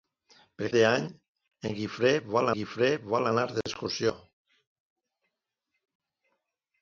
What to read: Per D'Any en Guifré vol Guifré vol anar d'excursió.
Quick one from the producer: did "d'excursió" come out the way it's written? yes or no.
yes